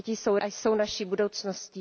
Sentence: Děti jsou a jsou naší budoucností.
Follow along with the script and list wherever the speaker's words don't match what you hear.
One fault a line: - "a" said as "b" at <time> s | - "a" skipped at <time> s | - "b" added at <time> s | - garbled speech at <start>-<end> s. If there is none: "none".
none